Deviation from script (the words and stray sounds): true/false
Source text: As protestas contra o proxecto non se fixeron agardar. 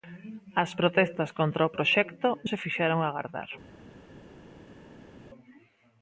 true